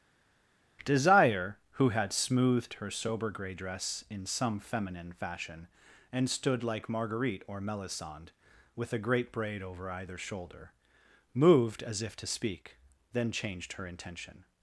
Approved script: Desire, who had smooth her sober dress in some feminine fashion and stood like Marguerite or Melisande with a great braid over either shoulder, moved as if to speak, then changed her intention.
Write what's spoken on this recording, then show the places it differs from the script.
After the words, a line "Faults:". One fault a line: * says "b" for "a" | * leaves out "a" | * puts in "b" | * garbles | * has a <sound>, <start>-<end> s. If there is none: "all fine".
Desire, who had smoothed her sober gray dress in some feminine fashion and stood like Marguerite or Melisande with a great braid over either shoulder, moved as if to speak, then changed her intention.
Faults:
* says "smoothed" for "smooth"
* puts in "gray"